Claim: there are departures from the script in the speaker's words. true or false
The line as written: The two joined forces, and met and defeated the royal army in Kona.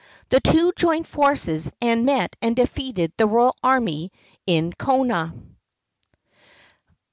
false